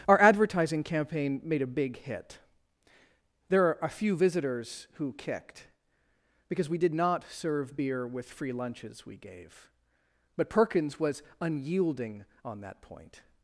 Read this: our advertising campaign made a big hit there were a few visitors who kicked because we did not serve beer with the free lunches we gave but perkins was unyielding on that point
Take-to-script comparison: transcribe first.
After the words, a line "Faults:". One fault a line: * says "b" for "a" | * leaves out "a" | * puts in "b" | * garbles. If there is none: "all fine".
our advertising campaign made a big hit there are a few visitors who kicked because we did not serve beer with free lunches we gave but perkins was unyielding on that point
Faults:
* says "are" for "were"
* leaves out "the"